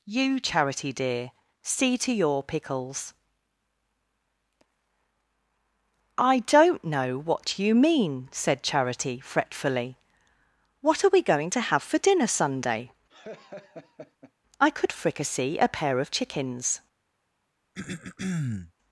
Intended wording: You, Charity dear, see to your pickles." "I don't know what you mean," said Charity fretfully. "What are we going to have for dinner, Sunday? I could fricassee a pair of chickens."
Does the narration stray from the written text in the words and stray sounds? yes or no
yes